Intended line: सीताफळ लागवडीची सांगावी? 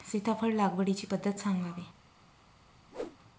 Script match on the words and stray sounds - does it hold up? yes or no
no